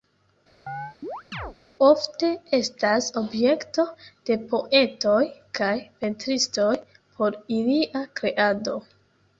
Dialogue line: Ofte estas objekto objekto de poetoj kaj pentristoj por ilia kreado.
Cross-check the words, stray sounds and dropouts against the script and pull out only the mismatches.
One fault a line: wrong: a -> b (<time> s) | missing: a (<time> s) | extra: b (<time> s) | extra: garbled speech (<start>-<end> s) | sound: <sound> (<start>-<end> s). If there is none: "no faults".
sound: chirp (0.7-1.6 s)
missing: objekto (3.8 s)